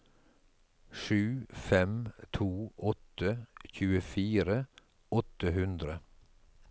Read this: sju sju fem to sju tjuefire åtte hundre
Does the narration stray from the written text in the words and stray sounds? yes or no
yes